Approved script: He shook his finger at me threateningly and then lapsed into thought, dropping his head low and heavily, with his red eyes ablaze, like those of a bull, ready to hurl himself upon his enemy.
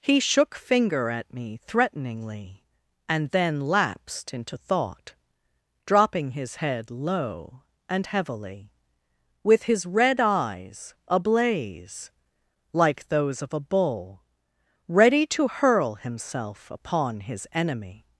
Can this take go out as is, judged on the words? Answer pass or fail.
fail